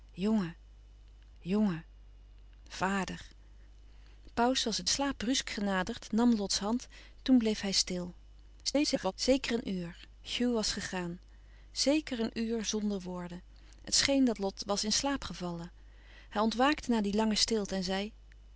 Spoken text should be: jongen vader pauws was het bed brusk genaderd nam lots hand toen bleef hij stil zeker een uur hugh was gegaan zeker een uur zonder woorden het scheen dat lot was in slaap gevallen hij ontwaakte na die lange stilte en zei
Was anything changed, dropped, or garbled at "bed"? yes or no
yes